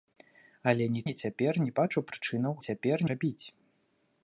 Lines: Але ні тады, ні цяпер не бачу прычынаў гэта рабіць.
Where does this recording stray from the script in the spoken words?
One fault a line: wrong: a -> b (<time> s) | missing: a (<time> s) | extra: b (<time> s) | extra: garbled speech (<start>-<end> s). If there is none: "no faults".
missing: тады (1.0 s)
wrong: гэта -> цяпер (2.7 s)